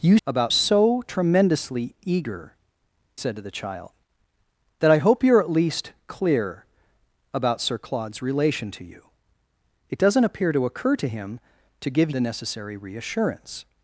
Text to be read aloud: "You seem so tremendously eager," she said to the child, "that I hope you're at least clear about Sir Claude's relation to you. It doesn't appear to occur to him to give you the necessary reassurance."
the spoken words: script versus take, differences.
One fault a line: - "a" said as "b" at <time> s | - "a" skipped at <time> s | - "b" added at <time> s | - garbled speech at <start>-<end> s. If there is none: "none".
- "seem" said as "about" at 0.3 s
- "she" skipped at 2.6 s
- "you" skipped at 12.1 s